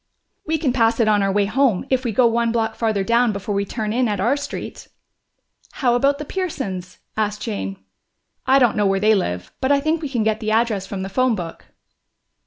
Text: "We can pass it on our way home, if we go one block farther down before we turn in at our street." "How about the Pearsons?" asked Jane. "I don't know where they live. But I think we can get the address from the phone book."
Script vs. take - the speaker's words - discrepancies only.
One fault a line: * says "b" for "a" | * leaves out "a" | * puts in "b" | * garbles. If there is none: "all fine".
all fine